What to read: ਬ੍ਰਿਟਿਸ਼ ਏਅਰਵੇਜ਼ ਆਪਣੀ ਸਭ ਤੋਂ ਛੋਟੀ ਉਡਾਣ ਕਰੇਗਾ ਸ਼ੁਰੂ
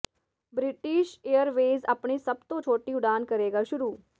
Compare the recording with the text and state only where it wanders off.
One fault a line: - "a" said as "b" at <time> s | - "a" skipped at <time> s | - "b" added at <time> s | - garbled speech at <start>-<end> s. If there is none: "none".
none